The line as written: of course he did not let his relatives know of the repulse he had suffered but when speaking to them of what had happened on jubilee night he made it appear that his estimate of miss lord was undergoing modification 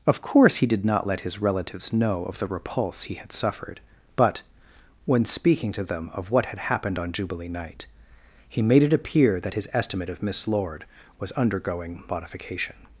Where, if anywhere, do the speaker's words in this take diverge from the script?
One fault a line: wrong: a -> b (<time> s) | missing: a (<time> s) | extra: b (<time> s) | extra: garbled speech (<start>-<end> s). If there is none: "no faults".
no faults